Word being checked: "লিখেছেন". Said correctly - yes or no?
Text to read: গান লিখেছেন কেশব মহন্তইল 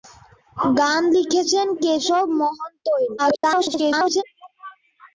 yes